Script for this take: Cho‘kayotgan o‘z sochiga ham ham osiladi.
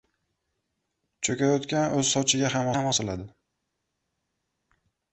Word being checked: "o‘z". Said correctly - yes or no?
yes